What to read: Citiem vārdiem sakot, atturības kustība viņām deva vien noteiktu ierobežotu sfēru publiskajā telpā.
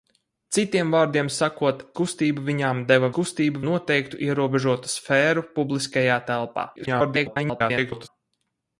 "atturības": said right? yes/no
no